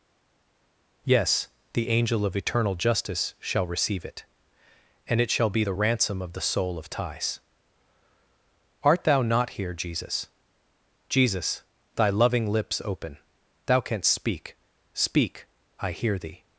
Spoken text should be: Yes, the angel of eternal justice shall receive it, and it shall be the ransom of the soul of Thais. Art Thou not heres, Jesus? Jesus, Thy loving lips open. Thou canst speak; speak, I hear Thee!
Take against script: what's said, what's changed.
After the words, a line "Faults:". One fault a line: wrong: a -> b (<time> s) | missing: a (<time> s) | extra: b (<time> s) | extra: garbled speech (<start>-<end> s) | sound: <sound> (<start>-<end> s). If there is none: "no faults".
Yes, the angel of eternal justice shall receive it, and it shall be the ransom of the soul of Thais. Art Thou not here, Jesus? Jesus, Thy loving lips open. Thou canst speak; speak, I hear Thee!
Faults:
wrong: heres -> here (9.5 s)